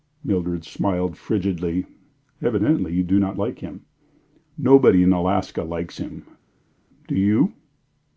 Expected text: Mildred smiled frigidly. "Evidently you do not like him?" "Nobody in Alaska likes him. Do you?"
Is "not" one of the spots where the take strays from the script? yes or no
no